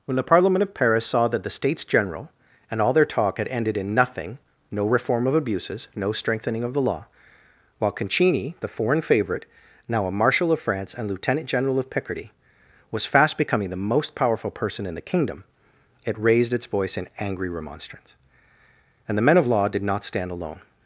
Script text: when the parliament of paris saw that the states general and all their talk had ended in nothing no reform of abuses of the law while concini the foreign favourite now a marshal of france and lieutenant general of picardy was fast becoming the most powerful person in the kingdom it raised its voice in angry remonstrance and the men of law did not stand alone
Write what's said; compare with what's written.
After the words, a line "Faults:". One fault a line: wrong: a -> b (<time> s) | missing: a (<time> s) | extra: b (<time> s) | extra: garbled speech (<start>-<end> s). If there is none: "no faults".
when the parliament of paris saw that the states general and all their talk had ended in nothing no reform of abuses no strengthening of the law while concini the foreign favourite now a marshal of france and lieutenant general of picardy was fast becoming the most powerful person in the kingdom it raised its voice in angry remonstrance and the men of law did not stand alone
Faults:
extra: no strengthening (5.9 s)